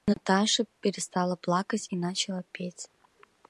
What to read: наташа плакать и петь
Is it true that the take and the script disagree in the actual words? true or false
true